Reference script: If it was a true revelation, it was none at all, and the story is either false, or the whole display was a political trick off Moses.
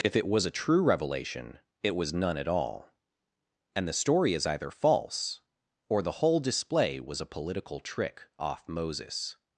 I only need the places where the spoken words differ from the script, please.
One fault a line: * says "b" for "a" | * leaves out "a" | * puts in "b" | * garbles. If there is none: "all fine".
all fine